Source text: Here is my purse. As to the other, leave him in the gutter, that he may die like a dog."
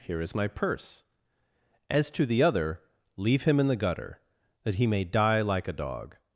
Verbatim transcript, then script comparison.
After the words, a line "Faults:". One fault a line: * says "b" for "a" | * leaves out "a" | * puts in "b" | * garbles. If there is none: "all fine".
Here is my purse. As to the other, leave him in the gutter, that he may die like a dog."
Faults:
all fine